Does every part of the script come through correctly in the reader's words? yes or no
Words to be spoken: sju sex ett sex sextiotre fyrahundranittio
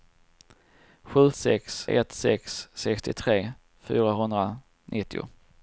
yes